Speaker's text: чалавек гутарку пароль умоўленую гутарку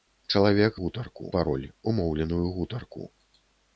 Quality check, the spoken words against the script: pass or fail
pass